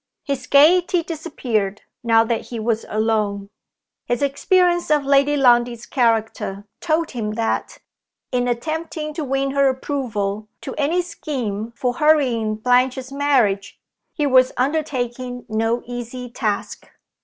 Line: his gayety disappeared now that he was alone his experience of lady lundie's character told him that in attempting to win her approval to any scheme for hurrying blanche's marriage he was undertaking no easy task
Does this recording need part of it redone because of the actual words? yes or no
no